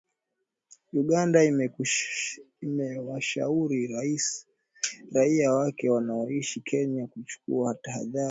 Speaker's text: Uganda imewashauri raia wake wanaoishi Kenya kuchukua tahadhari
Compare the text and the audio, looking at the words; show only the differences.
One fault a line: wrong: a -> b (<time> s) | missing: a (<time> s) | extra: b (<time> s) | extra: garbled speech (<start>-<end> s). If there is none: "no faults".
no faults